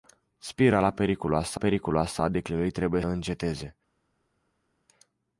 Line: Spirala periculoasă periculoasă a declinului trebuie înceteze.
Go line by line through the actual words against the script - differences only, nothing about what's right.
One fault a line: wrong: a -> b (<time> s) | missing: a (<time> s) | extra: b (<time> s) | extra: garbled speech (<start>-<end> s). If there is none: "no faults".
no faults